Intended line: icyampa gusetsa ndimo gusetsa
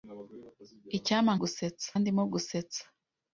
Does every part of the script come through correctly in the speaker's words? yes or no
yes